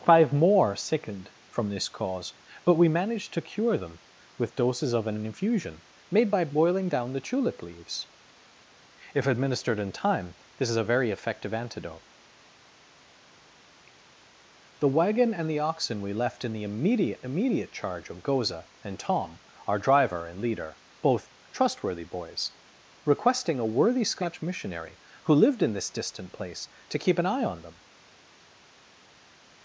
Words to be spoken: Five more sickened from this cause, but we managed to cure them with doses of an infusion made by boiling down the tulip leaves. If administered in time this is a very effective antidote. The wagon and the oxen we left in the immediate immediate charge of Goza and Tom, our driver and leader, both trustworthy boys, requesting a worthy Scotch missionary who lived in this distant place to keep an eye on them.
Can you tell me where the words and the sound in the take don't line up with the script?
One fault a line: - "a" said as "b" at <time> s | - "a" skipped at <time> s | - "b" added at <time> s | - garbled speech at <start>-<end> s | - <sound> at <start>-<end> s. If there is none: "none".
none